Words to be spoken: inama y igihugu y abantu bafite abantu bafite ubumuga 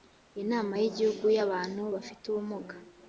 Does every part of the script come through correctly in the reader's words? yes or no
no